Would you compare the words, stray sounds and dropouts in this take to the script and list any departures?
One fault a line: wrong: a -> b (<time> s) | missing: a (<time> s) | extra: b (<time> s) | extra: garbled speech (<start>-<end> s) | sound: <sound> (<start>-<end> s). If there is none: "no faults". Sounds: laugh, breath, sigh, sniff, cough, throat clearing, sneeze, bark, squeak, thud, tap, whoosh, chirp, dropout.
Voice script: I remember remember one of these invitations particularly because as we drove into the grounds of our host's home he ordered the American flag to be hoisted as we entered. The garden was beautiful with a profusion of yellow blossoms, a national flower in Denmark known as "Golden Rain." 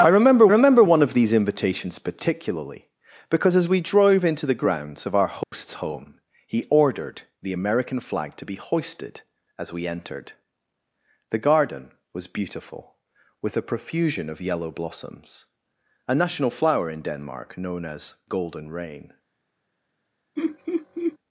sound: dropout (5.4-5.5 s)
sound: laugh (20.4-21.2 s)